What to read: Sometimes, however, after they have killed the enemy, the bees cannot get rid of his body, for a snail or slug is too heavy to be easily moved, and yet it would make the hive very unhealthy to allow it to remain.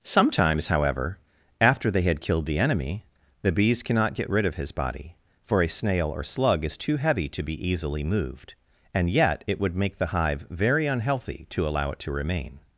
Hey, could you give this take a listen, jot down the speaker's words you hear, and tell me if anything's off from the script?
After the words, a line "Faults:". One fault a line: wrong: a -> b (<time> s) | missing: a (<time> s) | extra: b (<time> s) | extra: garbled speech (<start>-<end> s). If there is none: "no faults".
Sometimes, however, after they had killed the enemy, the bees cannot get rid of his body, for a snail or slug is too heavy to be easily moved, and yet it would make the hive very unhealthy to allow it to remain.
Faults:
wrong: have -> had (2.0 s)